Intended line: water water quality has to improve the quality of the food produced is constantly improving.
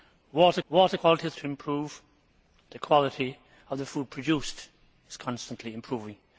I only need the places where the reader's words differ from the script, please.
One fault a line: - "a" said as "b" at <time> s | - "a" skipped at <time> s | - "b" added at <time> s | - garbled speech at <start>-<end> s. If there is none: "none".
none